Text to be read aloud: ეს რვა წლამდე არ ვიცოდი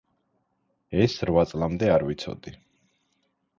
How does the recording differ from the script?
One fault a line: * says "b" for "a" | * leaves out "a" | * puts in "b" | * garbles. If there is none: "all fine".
all fine